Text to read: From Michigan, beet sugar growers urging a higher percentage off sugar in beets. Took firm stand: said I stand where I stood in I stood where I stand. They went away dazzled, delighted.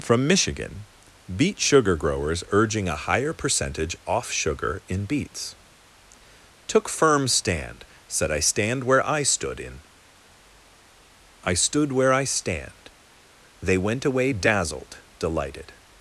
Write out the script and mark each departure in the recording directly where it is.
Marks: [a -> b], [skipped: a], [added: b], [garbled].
From Michigan, beet sugar growers urging a higher percentage off sugar in beets. Took firm stand: said I stand where I stood in I stood where I stand. They went away dazzled, delighted.